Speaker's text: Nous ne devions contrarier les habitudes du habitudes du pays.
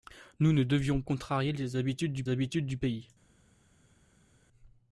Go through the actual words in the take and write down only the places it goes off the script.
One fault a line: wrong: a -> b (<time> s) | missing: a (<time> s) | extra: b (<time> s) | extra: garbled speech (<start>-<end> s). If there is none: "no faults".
no faults